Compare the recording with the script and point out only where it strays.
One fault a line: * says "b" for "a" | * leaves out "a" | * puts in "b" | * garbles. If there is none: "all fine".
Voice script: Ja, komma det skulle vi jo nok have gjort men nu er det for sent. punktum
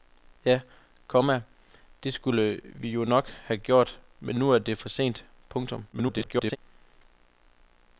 * garbles